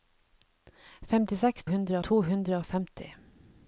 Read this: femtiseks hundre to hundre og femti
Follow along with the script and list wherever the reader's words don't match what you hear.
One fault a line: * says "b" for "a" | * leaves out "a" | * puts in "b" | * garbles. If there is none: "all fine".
all fine